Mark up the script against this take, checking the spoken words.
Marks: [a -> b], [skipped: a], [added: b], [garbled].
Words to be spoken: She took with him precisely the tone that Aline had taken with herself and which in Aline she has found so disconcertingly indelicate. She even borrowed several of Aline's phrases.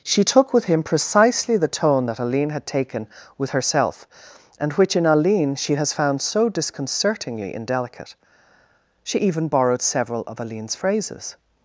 She took with him precisely the tone that Aline had taken with herself and which in Aline she has found so disconcertingly indelicate. She even borrowed several of Aline's phrases.